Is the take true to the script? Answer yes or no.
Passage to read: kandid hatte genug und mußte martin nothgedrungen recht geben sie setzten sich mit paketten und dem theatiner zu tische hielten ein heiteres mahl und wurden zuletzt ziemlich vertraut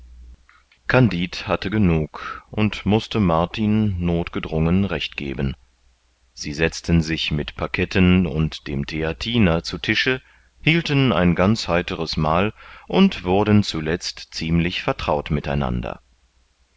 no